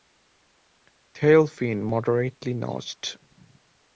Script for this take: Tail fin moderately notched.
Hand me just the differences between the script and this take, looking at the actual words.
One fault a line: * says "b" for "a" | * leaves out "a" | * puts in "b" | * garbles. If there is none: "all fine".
all fine